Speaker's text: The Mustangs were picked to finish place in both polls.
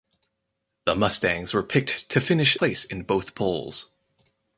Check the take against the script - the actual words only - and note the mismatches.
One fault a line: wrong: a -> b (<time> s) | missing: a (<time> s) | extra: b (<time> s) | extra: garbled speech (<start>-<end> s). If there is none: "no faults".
no faults